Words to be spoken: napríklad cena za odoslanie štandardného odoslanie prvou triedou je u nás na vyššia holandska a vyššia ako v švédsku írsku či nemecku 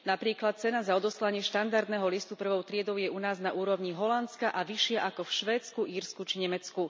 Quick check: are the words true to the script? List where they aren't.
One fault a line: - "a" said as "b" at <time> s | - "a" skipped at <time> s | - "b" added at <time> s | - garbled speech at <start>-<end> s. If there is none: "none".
- "odoslanie" said as "listu" at 2.1 s
- "vyššia" said as "úrovni" at 3.5 s